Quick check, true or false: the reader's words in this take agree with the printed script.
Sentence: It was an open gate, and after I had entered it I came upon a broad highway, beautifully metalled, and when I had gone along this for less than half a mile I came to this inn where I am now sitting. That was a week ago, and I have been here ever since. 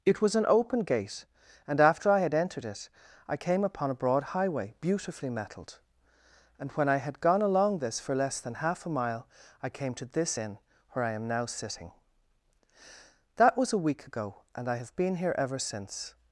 true